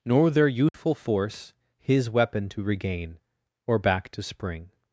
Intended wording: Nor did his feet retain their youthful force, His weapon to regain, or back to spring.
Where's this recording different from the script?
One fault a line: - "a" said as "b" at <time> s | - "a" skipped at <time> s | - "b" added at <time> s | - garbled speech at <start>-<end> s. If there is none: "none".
- "did his feet retain" skipped at 0.3 s